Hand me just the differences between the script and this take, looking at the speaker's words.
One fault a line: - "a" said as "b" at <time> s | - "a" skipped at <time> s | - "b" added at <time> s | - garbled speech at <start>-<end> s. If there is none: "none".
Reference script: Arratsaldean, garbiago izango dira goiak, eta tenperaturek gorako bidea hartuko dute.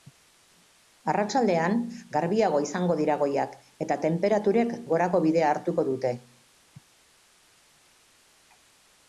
none